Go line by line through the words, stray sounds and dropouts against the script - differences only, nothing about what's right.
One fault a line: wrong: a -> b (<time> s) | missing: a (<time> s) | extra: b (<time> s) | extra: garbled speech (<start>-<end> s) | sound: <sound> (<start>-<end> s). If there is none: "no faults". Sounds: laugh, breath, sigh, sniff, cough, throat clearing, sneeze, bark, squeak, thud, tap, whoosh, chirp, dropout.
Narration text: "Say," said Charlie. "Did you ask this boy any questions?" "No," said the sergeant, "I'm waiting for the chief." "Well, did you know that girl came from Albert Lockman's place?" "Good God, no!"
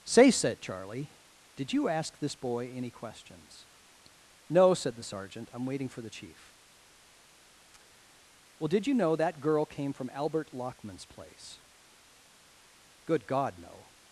no faults